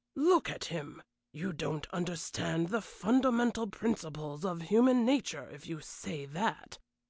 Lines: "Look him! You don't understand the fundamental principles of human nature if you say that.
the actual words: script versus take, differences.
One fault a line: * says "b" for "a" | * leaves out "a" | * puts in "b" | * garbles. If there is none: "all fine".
* puts in "at"